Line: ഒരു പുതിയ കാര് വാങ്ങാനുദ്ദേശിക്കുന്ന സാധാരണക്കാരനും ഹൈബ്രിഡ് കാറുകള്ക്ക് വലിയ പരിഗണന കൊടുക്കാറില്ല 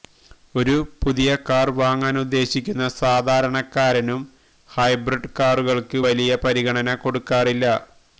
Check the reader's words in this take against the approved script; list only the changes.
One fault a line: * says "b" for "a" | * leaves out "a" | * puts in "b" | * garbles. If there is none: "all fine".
all fine